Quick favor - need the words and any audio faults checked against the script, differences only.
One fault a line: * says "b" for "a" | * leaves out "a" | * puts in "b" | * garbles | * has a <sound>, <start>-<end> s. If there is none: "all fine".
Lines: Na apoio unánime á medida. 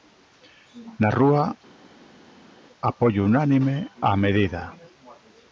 * puts in "rúa"